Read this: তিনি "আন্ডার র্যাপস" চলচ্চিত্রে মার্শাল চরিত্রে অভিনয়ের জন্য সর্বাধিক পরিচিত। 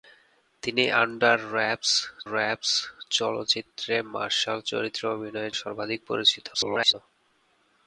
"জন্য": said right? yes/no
no